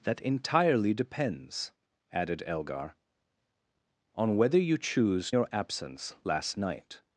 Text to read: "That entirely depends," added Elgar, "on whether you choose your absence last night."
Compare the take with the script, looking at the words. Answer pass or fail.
pass